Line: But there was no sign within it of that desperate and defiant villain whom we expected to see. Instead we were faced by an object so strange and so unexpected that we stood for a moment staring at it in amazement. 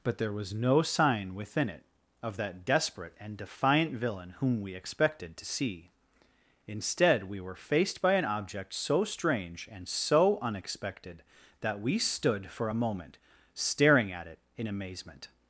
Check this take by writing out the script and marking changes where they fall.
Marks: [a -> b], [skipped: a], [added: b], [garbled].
But there was no sign within it of that desperate and defiant villain whom we expected to see. Instead we were faced by an object so strange and so unexpected that we stood for a moment staring at it in amazement.